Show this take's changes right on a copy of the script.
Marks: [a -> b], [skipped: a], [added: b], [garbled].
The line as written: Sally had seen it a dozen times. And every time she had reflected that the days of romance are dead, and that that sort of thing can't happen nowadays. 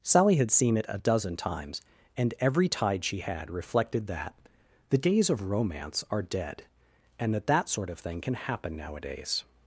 Sally had seen it a dozen times. And every [time -> tide] she had reflected that the days of romance are dead, and that that sort of thing [can't -> can] happen nowadays.